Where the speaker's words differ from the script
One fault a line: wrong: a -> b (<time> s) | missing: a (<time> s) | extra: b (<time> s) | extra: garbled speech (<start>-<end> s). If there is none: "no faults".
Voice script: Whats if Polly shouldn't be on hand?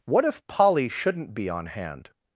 wrong: Whats -> What (0.1 s)